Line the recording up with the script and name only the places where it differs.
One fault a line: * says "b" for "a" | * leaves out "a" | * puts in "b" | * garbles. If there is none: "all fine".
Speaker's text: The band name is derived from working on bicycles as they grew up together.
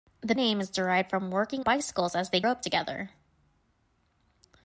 * leaves out "band"
* leaves out "on"
* leaves out "grew"